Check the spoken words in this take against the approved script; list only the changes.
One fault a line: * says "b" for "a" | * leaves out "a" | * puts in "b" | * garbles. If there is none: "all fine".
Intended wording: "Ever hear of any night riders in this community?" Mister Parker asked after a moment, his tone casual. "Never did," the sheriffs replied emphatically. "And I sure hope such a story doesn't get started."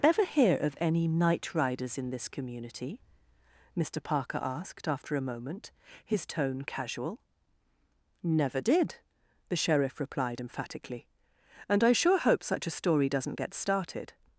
* says "sheriff" for "sheriffs"